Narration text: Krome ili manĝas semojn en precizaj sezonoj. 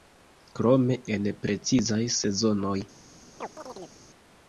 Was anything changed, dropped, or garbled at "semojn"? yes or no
yes